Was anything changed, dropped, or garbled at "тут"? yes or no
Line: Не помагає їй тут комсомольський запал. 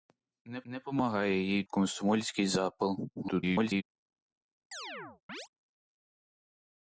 yes